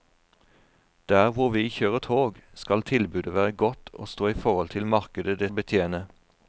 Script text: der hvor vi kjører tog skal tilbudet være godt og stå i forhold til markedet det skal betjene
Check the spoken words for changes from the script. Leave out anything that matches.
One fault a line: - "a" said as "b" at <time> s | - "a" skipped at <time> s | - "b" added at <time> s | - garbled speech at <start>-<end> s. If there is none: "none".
- "skal" skipped at 5.5 s